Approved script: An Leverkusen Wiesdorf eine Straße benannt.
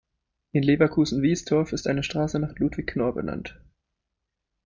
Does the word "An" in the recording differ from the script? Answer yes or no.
yes